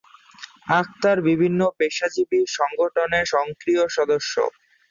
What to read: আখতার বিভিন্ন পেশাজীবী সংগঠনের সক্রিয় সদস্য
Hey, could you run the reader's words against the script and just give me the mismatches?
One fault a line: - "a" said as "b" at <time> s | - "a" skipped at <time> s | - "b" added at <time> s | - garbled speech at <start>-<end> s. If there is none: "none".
none